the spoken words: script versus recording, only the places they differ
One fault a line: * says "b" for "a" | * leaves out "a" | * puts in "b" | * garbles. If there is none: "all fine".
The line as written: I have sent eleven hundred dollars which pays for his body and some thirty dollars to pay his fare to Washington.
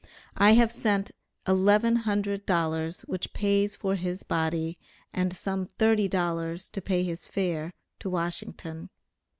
all fine